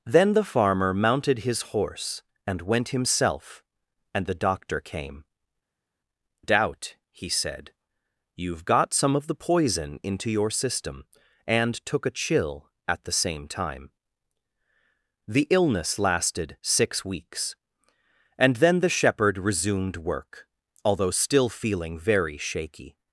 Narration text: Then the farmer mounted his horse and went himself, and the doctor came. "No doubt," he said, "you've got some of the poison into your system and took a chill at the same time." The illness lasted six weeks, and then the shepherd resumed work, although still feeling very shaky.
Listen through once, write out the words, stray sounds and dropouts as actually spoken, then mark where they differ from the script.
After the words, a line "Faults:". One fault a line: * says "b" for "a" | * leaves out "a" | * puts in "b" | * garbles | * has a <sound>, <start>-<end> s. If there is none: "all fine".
Then the farmer mounted his horse and went himself, and the doctor came. "Doubt," he said, "you've got some of the poison into your system and took a chill at the same time." The illness lasted six weeks, and then the shepherd resumed work, although still feeling very shaky.
Faults:
* leaves out "No"